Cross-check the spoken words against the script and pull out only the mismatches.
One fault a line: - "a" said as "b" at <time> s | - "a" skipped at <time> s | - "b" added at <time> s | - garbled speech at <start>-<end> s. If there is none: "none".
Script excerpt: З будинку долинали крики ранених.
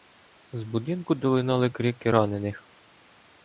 none